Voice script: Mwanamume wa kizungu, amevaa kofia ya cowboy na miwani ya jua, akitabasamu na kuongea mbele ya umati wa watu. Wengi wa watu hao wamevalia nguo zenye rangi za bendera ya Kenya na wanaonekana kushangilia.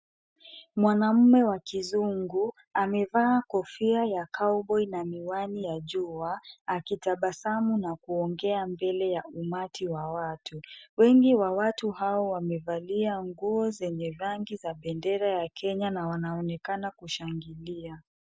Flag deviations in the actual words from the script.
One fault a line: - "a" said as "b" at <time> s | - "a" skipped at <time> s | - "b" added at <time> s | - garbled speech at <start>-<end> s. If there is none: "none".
none